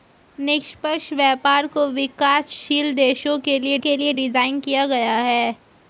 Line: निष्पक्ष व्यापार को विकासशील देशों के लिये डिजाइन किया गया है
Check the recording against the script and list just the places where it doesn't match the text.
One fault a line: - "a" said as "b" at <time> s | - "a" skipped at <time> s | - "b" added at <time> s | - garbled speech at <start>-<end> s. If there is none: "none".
- "के लिये" added at 3.8 s